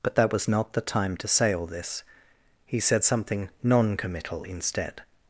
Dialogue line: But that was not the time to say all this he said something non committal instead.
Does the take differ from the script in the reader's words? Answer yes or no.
no